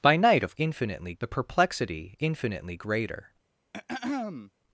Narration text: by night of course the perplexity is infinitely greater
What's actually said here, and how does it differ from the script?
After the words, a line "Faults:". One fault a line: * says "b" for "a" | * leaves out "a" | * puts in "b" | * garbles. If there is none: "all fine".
by night of infinitely the perplexity infinitely greater
Faults:
* says "infinitely" for "course"
* leaves out "is"